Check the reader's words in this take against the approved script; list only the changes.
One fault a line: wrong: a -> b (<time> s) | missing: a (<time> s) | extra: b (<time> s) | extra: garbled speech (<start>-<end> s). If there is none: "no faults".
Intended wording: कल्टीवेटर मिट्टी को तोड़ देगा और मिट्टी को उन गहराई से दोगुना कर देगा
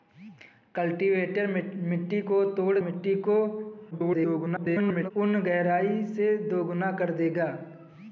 missing: देगा और (2.8 s)
extra: garbled speech (3.9-5.1 s)